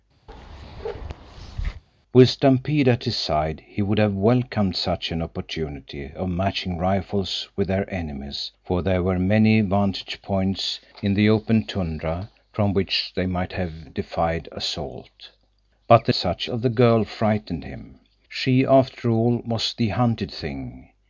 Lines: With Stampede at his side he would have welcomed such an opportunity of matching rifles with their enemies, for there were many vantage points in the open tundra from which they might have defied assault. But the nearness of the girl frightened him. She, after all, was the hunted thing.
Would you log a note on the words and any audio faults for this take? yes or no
yes